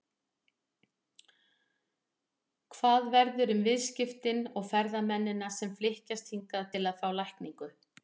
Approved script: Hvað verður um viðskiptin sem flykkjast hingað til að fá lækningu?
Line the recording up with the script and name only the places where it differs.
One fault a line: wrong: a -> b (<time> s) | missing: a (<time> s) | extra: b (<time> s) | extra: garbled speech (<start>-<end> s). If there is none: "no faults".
extra: og ferðamennina (4.5 s)